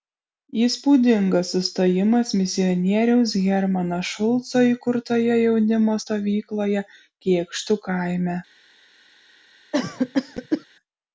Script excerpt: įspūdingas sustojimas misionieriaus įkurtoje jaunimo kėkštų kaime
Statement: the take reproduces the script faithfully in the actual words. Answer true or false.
false